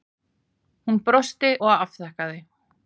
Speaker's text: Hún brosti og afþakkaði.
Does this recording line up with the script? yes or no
yes